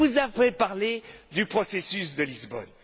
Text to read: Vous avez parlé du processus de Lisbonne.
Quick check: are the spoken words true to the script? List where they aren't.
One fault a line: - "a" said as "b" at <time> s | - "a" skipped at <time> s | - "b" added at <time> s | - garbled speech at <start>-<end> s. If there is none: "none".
none